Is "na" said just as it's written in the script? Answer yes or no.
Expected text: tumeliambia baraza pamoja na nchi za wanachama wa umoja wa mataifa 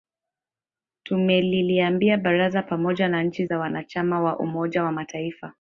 yes